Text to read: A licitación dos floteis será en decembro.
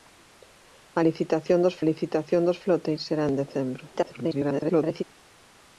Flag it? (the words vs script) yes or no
yes